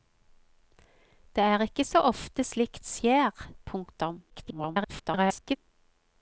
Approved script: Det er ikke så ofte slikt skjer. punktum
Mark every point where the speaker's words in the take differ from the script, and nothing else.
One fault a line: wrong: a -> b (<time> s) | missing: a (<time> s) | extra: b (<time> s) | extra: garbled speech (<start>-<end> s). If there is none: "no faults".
extra: garbled speech (4.3-5.6 s)